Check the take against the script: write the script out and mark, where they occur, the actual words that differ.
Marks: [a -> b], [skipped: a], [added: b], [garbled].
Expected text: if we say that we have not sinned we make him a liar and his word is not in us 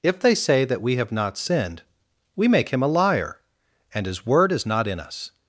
if [we -> they] say that we have not sinned we make him a liar and his word is not in us